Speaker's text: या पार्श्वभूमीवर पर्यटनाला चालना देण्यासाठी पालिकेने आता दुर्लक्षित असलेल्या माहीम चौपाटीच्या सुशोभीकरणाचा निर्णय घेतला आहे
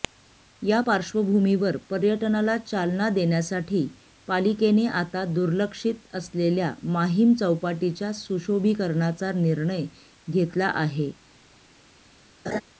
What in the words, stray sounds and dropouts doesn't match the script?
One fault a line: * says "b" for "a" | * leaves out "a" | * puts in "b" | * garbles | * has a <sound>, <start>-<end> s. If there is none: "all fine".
* has a laugh, 12.5-12.6 s